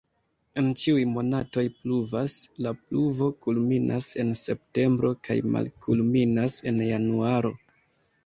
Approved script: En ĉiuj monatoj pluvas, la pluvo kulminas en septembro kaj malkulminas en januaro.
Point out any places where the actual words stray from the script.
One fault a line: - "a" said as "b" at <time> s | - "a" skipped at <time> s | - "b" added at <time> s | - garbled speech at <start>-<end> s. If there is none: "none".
none